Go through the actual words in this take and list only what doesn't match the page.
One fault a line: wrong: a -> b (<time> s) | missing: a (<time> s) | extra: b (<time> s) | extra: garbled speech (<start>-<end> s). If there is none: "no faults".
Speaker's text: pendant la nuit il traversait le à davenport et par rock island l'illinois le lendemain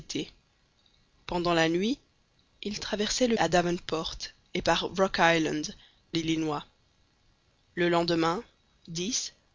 no faults